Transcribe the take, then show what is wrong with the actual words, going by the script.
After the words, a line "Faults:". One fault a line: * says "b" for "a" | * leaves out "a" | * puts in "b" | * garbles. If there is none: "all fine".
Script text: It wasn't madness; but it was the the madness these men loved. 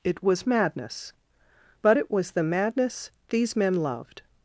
It was madness; but it was the madness these men loved.
Faults:
* says "was" for "wasn't"
* leaves out "the"